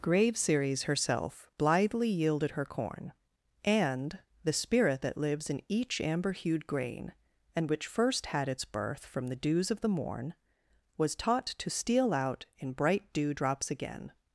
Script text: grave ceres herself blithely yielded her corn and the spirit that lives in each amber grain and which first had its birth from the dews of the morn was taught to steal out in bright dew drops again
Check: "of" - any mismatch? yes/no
no